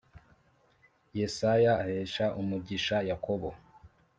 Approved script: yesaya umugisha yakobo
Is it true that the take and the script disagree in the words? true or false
true